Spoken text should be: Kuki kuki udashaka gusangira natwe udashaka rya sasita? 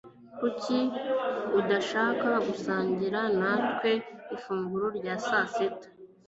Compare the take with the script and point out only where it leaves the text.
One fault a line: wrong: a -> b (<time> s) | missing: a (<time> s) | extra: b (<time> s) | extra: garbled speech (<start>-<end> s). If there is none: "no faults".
missing: kuki (0.8 s)
wrong: udashaka -> ifunguro (4.4 s)